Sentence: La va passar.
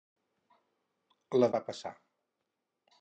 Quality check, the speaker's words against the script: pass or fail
pass